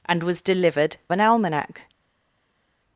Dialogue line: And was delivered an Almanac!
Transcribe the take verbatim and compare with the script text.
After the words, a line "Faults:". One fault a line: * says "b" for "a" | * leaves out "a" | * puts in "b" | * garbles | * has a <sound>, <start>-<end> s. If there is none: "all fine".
And was delivered an Almanac!
Faults:
all fine